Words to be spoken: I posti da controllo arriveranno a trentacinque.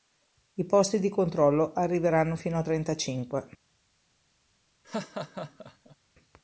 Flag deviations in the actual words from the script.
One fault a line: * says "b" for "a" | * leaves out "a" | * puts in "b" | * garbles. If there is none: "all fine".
* says "di" for "da"
* puts in "fino"